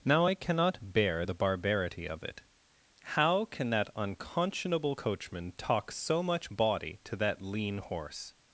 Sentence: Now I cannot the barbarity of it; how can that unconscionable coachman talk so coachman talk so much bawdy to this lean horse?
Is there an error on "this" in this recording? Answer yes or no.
yes